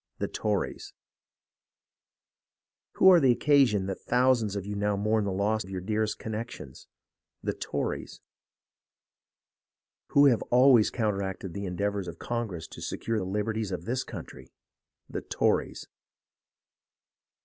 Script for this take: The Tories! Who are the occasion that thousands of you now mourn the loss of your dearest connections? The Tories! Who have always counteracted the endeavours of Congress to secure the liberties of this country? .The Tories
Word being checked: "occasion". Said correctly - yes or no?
yes